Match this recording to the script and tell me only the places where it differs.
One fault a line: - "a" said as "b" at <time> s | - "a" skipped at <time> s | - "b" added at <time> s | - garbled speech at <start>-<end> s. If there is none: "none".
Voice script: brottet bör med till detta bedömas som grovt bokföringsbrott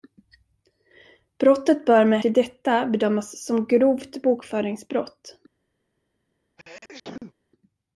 none